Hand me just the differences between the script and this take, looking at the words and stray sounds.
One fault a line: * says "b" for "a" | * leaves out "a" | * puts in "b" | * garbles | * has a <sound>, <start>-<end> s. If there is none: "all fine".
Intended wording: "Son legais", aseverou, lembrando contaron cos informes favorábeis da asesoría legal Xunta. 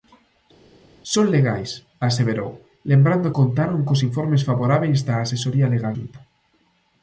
all fine